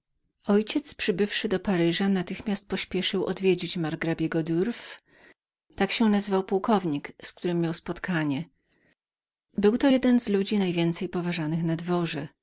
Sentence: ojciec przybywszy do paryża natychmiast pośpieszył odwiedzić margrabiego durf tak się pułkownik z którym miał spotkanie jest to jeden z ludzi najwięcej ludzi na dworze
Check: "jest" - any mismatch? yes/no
yes